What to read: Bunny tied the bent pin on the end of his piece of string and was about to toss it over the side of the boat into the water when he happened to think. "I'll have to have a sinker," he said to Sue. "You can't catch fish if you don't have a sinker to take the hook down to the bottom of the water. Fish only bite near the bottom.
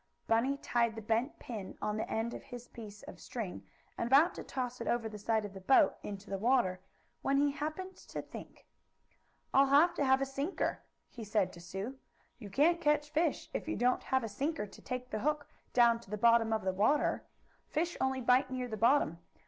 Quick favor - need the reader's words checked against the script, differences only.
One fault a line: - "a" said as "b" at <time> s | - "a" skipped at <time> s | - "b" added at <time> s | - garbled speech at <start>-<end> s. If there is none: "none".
- "was" skipped at 4.1 s